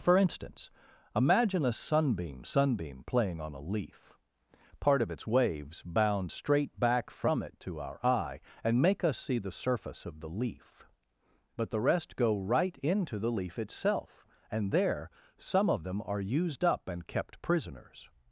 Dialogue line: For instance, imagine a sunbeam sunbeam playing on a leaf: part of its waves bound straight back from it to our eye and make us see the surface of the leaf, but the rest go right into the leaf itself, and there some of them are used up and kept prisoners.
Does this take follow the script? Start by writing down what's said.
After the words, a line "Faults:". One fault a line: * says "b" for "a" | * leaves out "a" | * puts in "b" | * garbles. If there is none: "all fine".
For instance, imagine a sunbeam sunbeam playing on a leaf: part of its waves bound straight back from it to our eye and make us see the surface of the leaf, but the rest go right into the leaf itself, and there some of them are used up and kept prisoners.
Faults:
all fine